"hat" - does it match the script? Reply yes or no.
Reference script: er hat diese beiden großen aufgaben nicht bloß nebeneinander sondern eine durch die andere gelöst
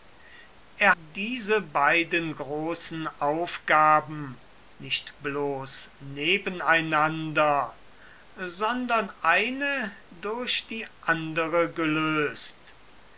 no